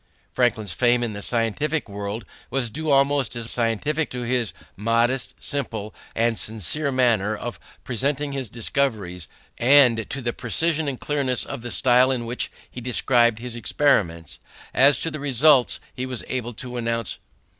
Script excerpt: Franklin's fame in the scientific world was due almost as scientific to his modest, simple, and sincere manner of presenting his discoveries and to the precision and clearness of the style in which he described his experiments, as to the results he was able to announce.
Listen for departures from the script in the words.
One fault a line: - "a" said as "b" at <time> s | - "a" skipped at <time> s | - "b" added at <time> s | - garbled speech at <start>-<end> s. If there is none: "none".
none